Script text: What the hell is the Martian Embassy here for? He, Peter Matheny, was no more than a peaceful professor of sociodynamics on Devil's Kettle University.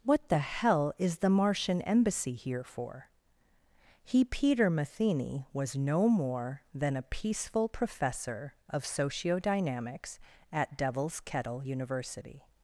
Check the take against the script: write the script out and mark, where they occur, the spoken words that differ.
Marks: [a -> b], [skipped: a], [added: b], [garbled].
What the hell is the Martian Embassy here for? He, Peter Matheny, was no more than a peaceful professor of sociodynamics [on -> at] Devil's Kettle University.